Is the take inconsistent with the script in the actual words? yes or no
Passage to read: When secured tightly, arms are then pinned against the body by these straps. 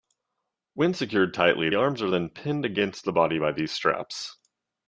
no